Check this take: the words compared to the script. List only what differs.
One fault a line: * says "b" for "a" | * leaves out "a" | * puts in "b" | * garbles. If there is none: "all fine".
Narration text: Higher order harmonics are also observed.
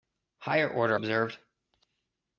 * leaves out "harmonics are also"